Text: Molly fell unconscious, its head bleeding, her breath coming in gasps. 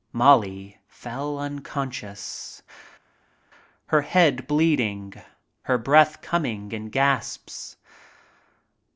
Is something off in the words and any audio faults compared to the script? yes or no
yes